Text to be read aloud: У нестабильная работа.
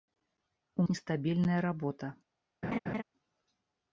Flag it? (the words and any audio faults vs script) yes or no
yes